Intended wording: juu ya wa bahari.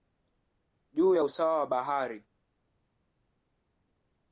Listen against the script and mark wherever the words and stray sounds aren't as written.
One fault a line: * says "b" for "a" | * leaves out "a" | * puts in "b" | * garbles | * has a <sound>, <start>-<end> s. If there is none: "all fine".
* puts in "usawa"